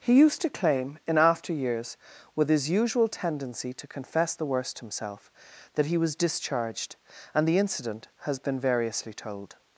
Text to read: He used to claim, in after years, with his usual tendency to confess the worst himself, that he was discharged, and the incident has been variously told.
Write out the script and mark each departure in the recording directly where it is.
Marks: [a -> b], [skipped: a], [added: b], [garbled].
He used to claim, in after years, with his usual tendency to confess the worst himself, that he was discharged, and the incident has been variously told.